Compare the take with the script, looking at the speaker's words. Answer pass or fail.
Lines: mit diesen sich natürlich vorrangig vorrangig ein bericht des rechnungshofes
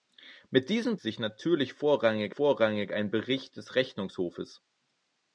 pass